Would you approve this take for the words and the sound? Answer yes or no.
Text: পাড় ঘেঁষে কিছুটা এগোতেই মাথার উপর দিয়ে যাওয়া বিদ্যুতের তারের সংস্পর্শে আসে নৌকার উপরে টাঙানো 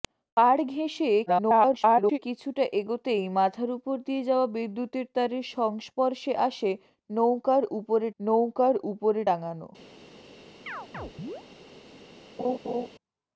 no